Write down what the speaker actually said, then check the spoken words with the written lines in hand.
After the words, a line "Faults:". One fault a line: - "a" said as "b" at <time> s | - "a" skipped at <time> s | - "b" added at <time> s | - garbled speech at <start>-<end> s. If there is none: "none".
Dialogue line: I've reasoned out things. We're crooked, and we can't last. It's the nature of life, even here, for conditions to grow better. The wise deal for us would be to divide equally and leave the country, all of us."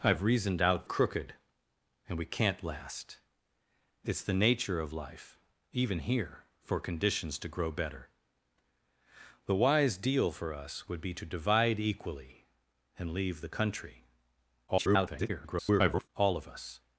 I've reasoned out crooked, and we can't last. It's the nature of life, even here, for conditions to grow better. The wise deal for us would be to divide equally and leave the country, [garbled] all of us."
Faults:
- "things We're" skipped at 0.9 s
- garbled speech at 14.7-16.1 s